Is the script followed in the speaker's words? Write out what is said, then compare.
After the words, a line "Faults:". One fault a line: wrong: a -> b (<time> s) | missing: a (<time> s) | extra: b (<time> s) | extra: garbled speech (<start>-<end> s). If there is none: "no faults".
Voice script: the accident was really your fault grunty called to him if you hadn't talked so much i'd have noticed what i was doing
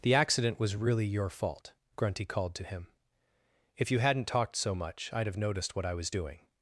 the accident was really your fault grunty called to him if you hadn't talked so much i'd have noticed what i was doing
Faults:
no faults